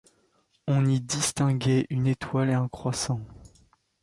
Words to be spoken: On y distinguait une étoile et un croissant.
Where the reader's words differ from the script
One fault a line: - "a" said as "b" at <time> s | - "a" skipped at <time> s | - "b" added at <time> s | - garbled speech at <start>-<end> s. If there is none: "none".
none